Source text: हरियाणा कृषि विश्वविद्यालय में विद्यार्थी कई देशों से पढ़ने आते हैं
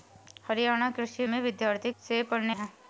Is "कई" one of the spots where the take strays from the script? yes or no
yes